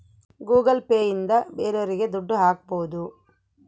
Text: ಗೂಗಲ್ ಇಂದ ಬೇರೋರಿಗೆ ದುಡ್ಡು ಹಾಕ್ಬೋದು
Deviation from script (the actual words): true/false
true